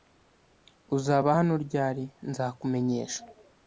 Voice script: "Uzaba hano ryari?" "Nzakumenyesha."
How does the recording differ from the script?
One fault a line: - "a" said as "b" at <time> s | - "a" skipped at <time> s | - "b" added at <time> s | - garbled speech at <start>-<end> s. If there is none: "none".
none